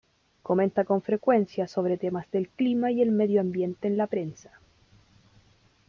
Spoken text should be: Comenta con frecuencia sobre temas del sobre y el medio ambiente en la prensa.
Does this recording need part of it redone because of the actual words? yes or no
yes